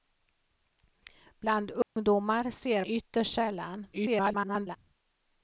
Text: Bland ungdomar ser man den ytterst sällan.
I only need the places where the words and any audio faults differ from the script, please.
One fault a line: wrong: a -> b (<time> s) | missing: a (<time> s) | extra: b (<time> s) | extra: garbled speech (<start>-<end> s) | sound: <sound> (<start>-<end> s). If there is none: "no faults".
sound: dropout (1.8-2.0 s)
missing: man den (2.9 s)
extra: garbled speech (3.9-4.8 s)